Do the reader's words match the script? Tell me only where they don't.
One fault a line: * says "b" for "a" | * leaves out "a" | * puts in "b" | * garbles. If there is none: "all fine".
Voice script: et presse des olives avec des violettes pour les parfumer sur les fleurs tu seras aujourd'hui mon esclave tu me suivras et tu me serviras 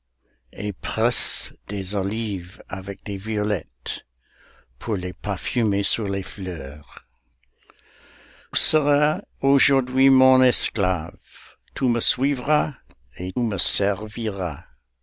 * leaves out "tu"
* leaves out "tu"